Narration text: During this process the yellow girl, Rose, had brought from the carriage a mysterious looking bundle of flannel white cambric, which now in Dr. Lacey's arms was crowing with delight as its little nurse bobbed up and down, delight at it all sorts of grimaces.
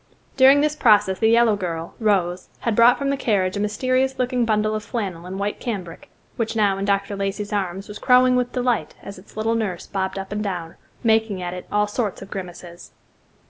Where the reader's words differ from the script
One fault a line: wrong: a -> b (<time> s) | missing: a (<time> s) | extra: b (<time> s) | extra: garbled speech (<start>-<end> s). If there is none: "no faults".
extra: and (5.2 s)
wrong: delight -> making (11.0 s)